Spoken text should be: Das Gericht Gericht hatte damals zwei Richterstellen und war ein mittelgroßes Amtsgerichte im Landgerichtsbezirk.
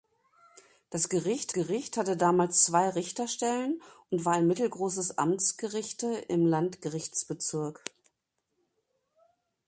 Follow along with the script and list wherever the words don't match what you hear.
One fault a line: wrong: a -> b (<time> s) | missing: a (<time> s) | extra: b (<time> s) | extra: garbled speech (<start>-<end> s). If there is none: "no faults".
no faults